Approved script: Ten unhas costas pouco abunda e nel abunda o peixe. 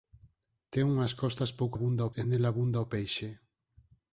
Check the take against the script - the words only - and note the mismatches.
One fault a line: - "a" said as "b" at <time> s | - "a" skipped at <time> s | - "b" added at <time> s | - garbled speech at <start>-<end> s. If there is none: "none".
none